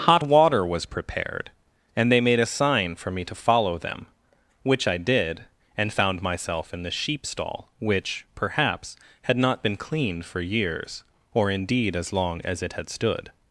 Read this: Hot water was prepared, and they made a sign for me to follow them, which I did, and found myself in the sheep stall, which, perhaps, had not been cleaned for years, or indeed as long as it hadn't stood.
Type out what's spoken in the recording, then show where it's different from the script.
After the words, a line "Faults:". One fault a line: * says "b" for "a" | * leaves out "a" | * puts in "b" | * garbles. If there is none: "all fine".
Hot water was prepared, and they made a sign for me to follow them, which I did, and found myself in the sheep stall, which, perhaps, had not been cleaned for years, or indeed as long as it had stood.
Faults:
* says "had" for "hadn't"